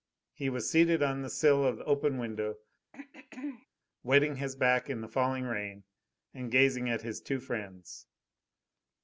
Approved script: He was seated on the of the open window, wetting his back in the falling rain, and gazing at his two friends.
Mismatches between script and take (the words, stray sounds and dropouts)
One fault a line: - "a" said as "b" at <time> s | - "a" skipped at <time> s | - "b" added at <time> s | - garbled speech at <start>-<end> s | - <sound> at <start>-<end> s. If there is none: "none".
- "sill" added at 1.3 s
- throat clearing at 2.9-3.7 s